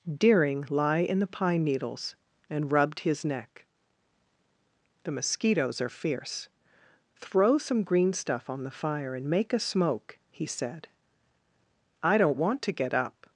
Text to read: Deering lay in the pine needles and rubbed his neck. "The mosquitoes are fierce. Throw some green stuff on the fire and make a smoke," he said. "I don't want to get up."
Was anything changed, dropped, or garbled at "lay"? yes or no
yes